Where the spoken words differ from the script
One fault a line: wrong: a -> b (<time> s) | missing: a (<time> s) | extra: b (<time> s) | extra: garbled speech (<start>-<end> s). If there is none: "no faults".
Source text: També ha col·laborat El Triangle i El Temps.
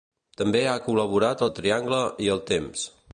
no faults